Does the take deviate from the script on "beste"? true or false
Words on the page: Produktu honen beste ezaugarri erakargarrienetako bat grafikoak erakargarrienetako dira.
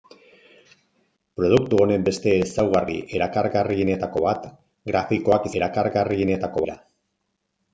false